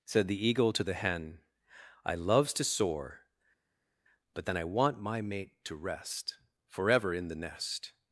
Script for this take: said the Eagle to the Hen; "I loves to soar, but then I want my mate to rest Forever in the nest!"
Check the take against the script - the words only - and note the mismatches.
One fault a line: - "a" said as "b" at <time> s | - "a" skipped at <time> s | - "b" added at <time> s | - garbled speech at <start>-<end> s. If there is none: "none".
none